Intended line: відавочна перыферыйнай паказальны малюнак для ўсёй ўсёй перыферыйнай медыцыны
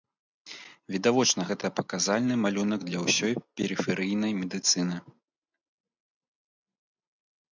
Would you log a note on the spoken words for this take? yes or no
yes